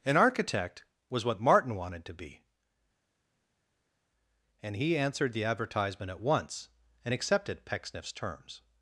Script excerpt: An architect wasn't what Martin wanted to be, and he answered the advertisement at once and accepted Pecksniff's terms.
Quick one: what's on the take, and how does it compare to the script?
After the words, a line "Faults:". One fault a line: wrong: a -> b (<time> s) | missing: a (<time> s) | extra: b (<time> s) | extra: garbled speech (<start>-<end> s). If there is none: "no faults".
An architect was what Martin wanted to be, and he answered the advertisement at once and accepted Pecksniff's terms.
Faults:
wrong: wasn't -> was (1.1 s)